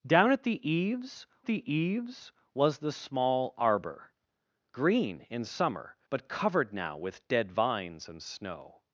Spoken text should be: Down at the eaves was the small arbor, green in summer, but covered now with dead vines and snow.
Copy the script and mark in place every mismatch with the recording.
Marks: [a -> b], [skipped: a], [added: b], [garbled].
Down at the eaves [added: the eaves] was the small arbor, green in summer, but covered now with dead vines and snow.